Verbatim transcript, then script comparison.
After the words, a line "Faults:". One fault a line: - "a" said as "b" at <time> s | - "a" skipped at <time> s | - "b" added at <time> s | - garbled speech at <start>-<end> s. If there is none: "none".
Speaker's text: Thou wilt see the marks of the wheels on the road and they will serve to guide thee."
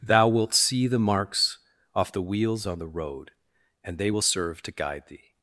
Thou wilt see the marks off the wheels on the road and they will serve to guide thee."
Faults:
- "of" said as "off" at 1.9 s